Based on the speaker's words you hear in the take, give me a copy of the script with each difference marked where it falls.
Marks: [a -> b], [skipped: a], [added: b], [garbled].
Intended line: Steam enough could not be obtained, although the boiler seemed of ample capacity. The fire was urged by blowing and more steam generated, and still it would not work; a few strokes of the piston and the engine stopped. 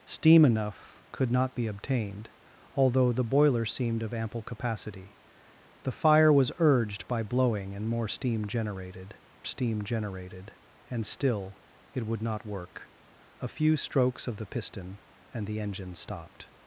Steam enough could not be obtained, although the boiler seemed of ample capacity. The fire was urged by blowing and more steam generated, [added: steam generated] and still it would not work; a few strokes of the piston and the engine stopped.